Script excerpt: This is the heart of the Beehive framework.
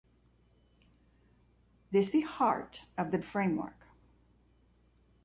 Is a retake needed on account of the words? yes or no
yes